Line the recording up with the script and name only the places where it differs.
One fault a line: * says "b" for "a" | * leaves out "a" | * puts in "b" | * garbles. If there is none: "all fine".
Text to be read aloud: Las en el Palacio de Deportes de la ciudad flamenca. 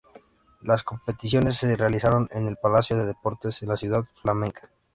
* puts in "competiciones se realizaron"